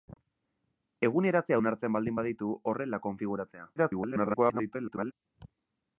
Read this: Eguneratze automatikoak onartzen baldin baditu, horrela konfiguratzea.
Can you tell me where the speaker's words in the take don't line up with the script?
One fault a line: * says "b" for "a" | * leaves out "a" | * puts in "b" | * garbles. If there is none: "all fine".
* leaves out "automatikoak"
* garbles